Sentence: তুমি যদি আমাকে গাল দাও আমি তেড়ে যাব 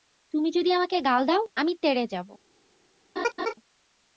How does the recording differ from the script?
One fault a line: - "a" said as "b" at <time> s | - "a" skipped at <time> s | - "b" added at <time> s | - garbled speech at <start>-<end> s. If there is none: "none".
none